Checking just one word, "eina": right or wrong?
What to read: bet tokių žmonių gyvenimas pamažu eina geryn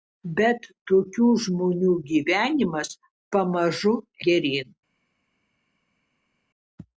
wrong